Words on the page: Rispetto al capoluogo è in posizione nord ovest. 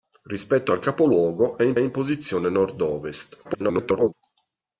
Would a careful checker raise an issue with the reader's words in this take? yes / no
yes